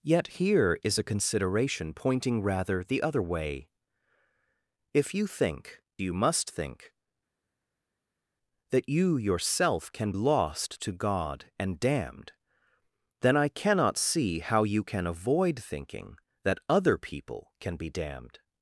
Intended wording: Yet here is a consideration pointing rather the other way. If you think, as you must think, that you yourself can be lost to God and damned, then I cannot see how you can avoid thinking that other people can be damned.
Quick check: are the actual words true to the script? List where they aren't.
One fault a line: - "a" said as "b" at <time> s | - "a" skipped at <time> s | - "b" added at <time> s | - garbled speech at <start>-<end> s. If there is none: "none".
- "as" skipped at 5.8 s
- "be" skipped at 10.1 s